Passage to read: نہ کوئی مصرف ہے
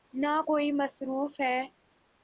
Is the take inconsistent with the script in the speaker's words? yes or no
no